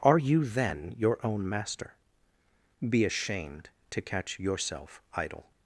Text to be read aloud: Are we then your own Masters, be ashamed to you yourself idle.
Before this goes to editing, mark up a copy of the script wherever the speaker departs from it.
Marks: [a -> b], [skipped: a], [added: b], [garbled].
Are [we -> you] then your own [Masters, -> Master] be ashamed to [you -> catch] yourself idle.